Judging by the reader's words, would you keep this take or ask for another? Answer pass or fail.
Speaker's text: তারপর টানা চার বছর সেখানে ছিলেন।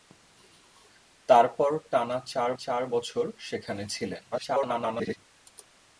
fail